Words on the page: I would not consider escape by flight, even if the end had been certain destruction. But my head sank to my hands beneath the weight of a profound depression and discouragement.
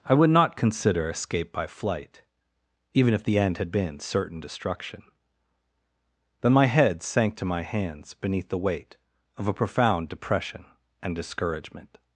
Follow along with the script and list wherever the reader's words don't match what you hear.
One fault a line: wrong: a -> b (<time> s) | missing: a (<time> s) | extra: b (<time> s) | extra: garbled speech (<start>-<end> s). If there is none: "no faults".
wrong: But -> Then (6.4 s)